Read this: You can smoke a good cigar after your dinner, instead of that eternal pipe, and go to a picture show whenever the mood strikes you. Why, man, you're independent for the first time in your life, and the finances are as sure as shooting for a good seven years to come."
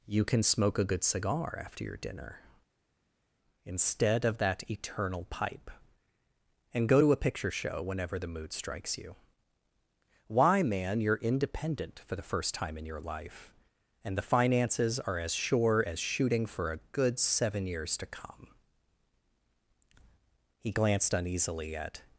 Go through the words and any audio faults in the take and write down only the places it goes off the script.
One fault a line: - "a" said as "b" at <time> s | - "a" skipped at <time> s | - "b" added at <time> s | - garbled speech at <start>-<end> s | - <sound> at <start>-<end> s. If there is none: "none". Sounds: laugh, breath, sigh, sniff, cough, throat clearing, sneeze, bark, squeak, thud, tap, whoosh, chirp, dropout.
- "He glanced uneasily at" added at 20.6 s